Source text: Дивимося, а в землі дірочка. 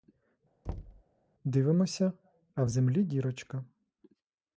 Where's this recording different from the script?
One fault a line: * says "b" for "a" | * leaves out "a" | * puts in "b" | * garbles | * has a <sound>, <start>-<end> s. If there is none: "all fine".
* has a thud, 0.7-1.0 s